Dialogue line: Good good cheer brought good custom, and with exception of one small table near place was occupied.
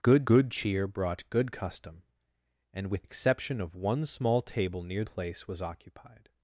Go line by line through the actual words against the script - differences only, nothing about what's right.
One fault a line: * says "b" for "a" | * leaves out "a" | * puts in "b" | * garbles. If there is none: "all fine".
all fine